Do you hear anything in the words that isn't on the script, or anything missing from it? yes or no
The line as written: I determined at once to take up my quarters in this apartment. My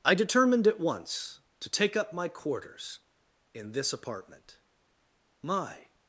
no